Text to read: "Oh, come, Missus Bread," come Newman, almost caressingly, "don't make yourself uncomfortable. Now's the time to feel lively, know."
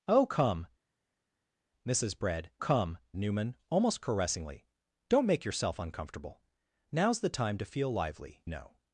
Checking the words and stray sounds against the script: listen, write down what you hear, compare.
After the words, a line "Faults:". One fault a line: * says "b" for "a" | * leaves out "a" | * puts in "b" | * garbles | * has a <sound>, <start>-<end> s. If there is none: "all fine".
"Oh, come, Missus Bread," come Newman, almost caressingly, "don't make yourself uncomfortable. Now's the time to feel lively, know."
Faults:
all fine